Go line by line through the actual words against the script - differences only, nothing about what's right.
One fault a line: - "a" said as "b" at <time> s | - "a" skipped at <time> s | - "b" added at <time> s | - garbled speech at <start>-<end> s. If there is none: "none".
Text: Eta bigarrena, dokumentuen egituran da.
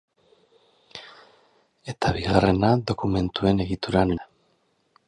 none